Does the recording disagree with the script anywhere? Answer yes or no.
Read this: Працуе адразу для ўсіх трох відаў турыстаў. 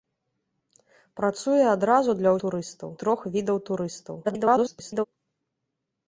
yes